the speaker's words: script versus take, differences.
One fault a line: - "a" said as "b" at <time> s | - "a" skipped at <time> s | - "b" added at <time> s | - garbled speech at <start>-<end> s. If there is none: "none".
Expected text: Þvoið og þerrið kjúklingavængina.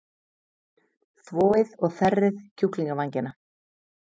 none